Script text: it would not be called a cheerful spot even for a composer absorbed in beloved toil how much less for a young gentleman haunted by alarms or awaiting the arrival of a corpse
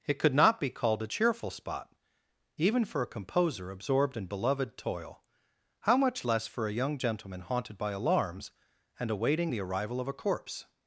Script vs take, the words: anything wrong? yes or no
yes